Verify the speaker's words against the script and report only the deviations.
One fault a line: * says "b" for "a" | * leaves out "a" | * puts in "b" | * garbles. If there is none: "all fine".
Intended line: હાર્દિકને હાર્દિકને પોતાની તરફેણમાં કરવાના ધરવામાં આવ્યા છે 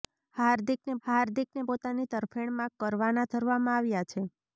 all fine